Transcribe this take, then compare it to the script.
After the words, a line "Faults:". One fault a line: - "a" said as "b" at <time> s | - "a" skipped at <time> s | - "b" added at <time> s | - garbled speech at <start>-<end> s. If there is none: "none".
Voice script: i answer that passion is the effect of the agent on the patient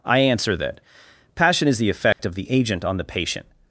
i answer that passion is the effect of the agent on the patient
Faults:
none